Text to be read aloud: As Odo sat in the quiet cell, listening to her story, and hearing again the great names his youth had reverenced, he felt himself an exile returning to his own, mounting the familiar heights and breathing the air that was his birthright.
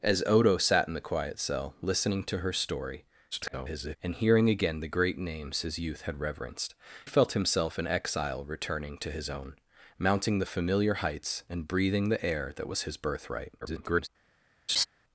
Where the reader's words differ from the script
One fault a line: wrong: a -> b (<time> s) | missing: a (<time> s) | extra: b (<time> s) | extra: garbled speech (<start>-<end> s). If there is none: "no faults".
extra: garbled speech (3.3-4.0 s)
missing: he (6.7 s)
extra: garbled speech (13.6-14.1 s)